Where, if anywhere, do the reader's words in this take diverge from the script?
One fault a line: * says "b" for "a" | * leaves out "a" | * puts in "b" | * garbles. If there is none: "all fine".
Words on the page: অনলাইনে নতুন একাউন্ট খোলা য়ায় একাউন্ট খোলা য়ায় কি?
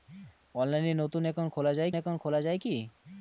all fine